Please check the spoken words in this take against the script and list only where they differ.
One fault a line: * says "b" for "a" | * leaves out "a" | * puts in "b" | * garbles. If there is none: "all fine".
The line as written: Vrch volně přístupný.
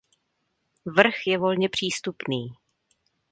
* puts in "je"